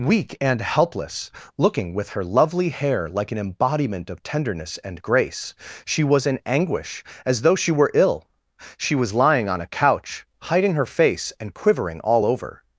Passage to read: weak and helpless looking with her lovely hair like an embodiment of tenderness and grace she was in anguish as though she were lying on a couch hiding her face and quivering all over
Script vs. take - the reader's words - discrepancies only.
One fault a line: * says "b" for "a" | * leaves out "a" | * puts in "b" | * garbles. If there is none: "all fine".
* puts in "ill she was"